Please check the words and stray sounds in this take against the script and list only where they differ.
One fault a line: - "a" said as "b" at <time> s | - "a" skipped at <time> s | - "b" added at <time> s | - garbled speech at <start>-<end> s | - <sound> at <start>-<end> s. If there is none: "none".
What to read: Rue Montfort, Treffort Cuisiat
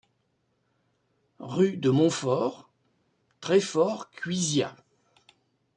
- "de" added at 1.8 s